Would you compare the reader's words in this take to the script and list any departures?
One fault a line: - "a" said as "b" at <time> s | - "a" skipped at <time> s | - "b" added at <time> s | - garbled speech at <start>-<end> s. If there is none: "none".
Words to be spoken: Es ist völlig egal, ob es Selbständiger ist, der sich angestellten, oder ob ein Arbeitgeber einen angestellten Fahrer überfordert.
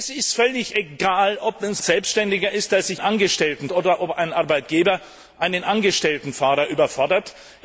none